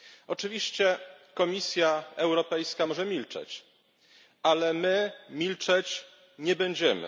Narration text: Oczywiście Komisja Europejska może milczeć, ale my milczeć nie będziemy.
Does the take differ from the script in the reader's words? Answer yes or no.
no